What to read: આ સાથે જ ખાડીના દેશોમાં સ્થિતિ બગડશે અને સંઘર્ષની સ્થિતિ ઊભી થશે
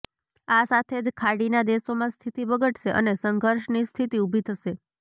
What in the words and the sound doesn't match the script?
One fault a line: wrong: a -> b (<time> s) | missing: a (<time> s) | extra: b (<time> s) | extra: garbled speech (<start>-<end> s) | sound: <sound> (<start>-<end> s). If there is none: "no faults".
no faults